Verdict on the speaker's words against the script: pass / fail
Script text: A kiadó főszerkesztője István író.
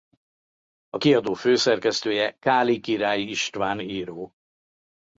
fail